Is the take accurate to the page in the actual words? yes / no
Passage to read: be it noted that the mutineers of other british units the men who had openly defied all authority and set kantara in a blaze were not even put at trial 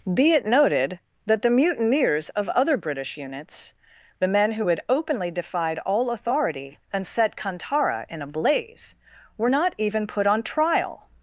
no